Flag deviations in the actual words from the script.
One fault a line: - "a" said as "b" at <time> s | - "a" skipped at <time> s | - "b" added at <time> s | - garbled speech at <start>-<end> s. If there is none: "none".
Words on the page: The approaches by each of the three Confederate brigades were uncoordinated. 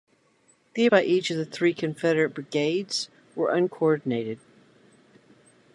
- "approaches" skipped at 0.9 s